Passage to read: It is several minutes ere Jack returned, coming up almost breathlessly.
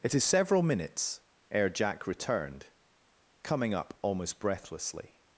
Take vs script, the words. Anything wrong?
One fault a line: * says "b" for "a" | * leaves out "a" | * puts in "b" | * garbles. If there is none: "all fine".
all fine